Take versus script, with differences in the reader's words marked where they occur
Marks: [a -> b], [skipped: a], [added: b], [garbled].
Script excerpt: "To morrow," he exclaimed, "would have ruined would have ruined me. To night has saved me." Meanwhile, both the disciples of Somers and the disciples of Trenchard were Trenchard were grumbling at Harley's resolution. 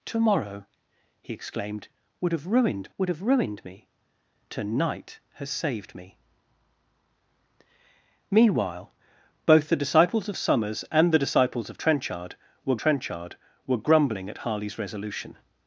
"To morrow," he exclaimed, "would have ruined would have ruined me. To night has saved me." Meanwhile, both the disciples of Somers and the disciples of Trenchard were Trenchard were grumbling at Harley's resolution.